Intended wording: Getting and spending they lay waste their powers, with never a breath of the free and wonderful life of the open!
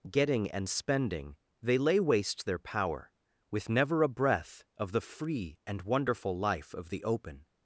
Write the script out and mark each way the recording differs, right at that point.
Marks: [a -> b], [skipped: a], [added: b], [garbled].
Getting and spending they lay waste their [powers, -> power] with never a breath of the free and wonderful life of the open!